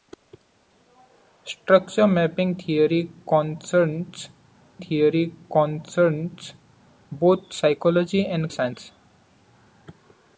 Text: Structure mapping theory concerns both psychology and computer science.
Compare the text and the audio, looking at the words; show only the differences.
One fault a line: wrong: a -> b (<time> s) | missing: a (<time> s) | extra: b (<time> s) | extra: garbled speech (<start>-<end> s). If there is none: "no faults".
extra: theory concerns (4.8 s)
missing: computer (8.5 s)